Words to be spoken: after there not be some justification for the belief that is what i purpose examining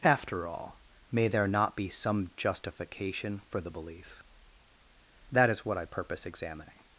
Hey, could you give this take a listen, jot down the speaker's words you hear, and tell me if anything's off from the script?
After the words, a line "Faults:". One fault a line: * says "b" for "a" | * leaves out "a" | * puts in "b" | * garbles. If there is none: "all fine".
after all may there not be some justification for the belief that is what i purpose examining
Faults:
* puts in "all may"